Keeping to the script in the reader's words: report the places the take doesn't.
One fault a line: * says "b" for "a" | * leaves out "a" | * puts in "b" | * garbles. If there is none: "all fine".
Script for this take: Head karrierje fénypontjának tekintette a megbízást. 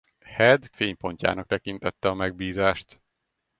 * leaves out "karrierje"